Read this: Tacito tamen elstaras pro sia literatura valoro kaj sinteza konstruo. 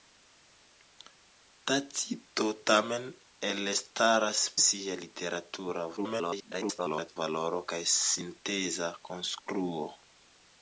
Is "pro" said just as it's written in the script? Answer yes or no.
no